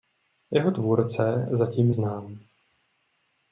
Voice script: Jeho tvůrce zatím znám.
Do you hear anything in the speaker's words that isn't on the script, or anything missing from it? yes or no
no